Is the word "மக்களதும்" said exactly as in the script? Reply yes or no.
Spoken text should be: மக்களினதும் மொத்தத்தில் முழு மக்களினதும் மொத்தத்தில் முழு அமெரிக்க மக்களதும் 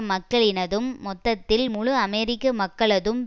yes